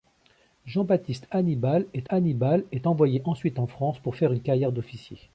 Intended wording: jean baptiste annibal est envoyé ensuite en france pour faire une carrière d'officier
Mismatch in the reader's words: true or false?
true